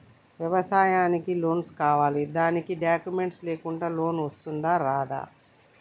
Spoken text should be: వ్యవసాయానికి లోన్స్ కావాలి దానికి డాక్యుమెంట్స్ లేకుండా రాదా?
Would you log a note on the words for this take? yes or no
yes